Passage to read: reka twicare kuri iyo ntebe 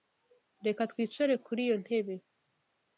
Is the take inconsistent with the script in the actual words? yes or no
no